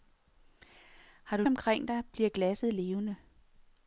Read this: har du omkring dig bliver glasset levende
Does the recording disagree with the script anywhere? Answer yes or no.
no